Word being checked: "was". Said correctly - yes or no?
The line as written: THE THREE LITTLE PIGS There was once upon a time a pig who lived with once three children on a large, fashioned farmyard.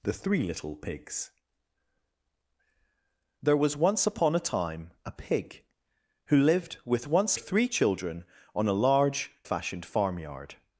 yes